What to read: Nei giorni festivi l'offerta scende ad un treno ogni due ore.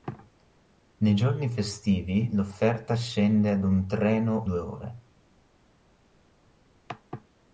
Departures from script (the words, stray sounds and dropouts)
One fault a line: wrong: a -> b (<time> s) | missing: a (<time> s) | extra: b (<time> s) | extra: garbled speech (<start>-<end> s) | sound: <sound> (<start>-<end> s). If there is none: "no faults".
missing: ogni (4.5 s)